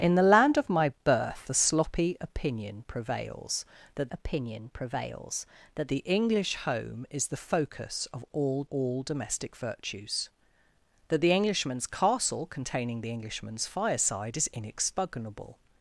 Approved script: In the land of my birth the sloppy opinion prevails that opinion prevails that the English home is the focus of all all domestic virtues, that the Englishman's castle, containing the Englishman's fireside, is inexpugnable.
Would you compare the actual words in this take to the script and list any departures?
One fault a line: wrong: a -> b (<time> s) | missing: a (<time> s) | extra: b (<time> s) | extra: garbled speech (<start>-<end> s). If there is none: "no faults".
no faults